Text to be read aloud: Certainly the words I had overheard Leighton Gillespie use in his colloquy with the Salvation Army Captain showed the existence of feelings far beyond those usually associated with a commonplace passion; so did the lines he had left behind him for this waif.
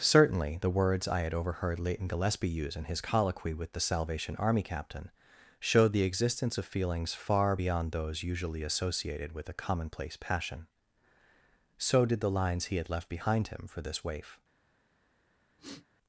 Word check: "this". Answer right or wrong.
right